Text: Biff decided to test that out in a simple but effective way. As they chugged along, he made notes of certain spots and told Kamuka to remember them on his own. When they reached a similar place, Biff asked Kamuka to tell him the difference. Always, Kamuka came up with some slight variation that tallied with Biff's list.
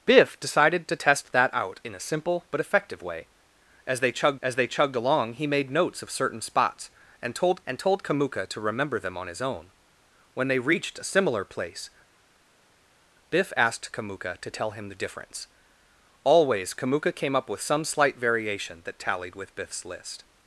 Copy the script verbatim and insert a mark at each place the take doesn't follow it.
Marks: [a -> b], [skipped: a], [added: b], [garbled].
Biff decided to test that out in a simple but effective way. As they chugged [added: as they chugged] along, he made notes of certain spots and told [added: and told] Kamuka to remember them on his own. When they reached a similar place, Biff asked Kamuka to tell him the difference. Always, Kamuka came up with some slight variation that tallied with Biff's list.